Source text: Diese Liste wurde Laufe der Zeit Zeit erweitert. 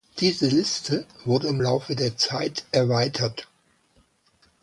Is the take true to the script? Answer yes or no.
no